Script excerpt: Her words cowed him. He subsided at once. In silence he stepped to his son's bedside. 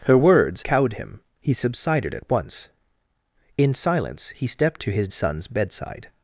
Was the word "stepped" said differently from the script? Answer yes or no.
no